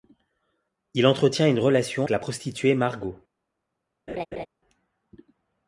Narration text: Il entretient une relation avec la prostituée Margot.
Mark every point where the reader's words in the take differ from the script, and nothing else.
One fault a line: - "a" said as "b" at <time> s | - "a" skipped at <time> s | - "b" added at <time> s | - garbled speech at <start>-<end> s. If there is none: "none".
- "avec" skipped at 2.1 s